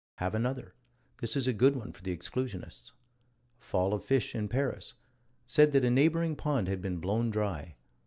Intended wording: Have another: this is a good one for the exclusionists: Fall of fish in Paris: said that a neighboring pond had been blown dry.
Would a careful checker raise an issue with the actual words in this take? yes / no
no